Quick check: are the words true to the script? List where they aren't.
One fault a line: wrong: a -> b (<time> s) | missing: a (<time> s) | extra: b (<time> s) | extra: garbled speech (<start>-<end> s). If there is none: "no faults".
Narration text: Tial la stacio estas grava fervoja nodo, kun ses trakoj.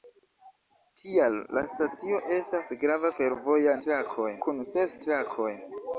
wrong: nodo -> trakoj (3.9 s)